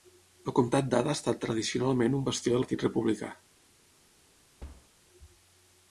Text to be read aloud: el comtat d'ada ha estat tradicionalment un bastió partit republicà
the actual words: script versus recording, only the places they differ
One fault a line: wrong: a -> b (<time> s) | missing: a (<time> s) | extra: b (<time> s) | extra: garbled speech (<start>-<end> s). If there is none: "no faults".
no faults